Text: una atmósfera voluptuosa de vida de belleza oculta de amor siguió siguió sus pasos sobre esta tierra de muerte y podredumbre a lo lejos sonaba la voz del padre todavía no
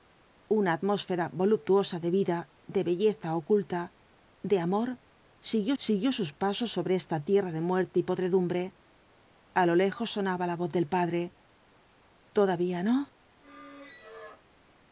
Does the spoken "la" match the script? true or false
true